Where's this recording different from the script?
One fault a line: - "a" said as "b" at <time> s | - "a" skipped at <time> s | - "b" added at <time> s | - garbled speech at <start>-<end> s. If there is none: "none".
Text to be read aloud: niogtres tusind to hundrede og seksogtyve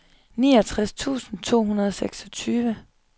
none